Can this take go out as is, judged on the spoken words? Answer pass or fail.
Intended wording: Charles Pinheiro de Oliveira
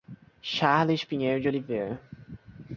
pass